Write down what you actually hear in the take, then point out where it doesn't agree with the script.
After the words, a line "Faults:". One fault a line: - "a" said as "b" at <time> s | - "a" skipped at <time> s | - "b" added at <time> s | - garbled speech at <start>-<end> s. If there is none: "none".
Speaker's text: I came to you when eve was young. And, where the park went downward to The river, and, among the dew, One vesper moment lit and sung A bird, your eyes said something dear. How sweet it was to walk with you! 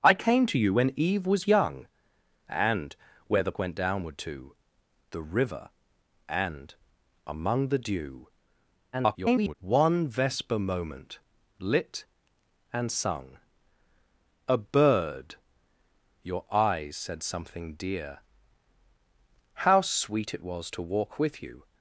I came to you when eve was young. And, where the went downward to The river, and, among the dew, [garbled] One vesper moment lit and sung A bird, your eyes said something dear. How sweet it was to walk with you!
Faults:
- "park" skipped at 3.6 s
- garbled speech at 8.9-9.5 s